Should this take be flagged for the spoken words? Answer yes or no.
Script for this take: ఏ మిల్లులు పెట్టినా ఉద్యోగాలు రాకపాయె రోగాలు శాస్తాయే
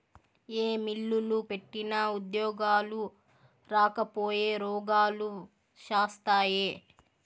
no